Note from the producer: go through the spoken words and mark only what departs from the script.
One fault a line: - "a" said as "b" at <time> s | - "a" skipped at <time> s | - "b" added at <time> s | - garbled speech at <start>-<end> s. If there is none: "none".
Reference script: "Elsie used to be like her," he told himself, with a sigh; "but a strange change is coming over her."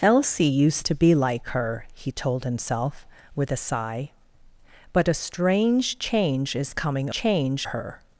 - "over" said as "change" at 7.1 s